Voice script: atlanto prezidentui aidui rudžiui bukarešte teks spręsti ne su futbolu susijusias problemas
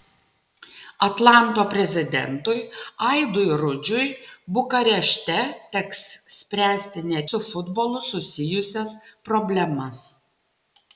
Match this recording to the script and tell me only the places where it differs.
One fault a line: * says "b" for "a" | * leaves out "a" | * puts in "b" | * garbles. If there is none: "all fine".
all fine